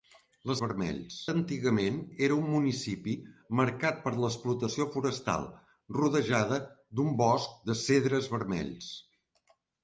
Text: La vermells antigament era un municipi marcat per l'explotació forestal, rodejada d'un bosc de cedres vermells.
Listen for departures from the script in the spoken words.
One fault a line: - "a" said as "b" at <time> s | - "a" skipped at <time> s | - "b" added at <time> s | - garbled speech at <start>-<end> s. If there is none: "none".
none